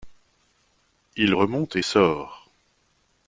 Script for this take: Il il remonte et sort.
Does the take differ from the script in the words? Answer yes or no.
yes